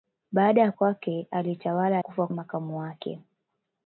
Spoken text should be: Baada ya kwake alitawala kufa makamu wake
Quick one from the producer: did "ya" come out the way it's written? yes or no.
yes